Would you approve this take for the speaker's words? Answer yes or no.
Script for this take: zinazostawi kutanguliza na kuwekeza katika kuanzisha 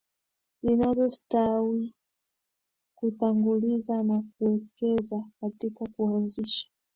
yes